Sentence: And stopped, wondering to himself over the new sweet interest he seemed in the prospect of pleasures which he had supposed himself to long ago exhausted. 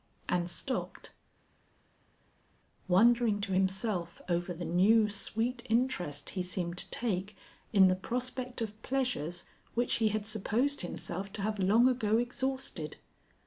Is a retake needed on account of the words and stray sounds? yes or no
yes